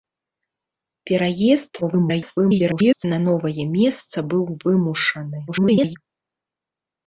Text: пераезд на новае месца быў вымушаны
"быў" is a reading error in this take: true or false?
false